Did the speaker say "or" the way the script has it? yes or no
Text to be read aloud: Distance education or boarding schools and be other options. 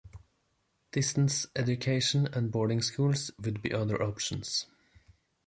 no